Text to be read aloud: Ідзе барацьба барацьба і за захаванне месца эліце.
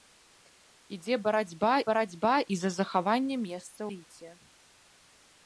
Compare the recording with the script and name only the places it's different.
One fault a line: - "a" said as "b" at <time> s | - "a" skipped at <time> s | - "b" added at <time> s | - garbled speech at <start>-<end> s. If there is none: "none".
none